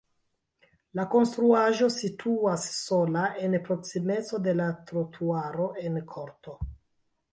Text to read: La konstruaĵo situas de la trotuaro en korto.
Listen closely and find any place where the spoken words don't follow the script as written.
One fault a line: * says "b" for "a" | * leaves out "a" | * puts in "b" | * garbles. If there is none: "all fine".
* puts in "sola en proksimeco"